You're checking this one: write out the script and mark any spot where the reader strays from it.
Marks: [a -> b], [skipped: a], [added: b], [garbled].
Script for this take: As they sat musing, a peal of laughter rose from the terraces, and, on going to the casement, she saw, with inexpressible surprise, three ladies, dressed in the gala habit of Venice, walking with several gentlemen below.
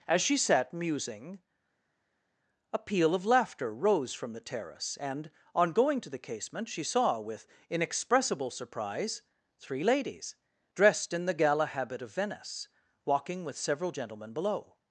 As [they -> she] sat musing, a peal of laughter rose from the [terraces, -> terrace] and, on going to the casement, she saw, with inexpressible surprise, three ladies, dressed in the gala habit of Venice, walking with several gentlemen below.